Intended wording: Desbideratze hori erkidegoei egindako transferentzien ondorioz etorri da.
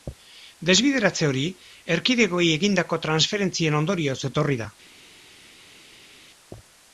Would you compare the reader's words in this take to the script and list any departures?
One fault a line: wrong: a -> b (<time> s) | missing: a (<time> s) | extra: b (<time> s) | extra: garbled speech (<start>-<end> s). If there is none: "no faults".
no faults